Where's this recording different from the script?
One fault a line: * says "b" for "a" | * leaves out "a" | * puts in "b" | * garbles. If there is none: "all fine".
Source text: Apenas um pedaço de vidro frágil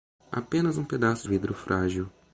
* leaves out "de"